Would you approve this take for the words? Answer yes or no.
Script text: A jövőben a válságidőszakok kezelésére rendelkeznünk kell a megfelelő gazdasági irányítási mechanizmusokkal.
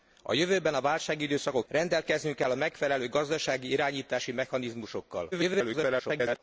no